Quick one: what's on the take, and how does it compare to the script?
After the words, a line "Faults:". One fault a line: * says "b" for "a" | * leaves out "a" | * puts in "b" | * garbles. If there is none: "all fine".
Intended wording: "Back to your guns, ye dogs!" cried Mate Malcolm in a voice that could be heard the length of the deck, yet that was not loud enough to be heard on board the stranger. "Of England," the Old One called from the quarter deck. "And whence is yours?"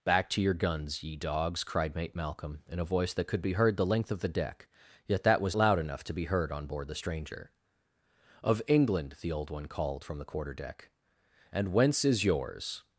"Back to your guns, ye dogs!" cried Mate Malcolm in a voice that could be heard the length of the deck, yet that was loud enough to be heard on board the stranger. "Of England," the Old One called from the quarter deck. "And whence is yours?"
Faults:
* leaves out "not"